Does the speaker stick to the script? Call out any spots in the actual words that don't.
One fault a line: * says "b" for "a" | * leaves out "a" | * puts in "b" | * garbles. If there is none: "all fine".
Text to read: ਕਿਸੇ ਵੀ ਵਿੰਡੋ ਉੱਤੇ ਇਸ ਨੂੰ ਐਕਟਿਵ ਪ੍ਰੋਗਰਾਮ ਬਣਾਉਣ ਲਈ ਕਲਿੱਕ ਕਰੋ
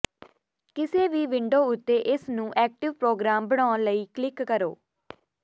all fine